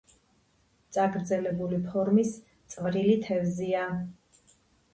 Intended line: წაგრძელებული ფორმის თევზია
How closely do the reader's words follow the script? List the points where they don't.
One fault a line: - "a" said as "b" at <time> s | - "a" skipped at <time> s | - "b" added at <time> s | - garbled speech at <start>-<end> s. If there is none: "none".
- "წვრილი" added at 2.8 s